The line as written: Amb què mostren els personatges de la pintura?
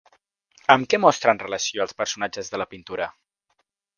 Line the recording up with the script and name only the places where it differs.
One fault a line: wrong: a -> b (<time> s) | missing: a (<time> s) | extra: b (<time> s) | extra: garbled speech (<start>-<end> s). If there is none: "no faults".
extra: relació (1.4 s)